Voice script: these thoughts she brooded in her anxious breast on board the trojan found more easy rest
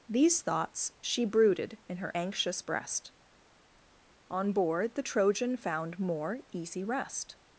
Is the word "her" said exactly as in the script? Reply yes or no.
yes